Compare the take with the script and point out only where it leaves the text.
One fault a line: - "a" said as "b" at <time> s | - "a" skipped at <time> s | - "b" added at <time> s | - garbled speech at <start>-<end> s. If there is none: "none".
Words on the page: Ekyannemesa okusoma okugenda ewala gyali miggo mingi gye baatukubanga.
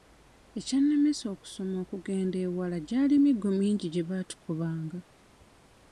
none